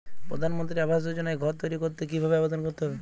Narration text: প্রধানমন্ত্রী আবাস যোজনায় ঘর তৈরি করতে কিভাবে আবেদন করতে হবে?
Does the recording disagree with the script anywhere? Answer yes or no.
no